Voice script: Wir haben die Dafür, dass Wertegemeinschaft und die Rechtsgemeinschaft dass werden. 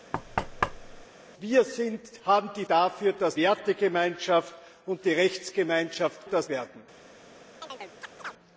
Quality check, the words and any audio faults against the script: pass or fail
fail